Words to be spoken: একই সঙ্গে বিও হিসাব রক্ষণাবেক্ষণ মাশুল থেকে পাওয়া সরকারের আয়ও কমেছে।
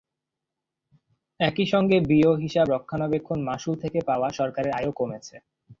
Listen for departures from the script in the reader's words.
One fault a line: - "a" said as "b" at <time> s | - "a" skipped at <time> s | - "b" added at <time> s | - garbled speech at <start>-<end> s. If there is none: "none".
none